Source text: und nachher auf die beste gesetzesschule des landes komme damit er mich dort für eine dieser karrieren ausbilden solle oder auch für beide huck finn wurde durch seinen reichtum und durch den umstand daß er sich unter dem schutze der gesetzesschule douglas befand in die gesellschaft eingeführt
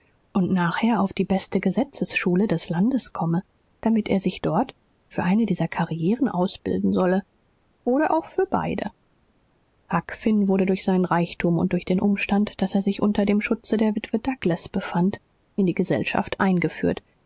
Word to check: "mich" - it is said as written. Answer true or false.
false